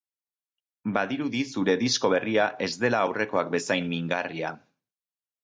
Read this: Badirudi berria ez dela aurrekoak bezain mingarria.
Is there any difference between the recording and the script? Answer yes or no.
yes